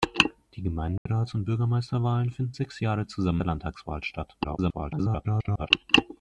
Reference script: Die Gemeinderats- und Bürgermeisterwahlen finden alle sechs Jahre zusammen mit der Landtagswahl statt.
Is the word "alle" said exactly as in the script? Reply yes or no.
no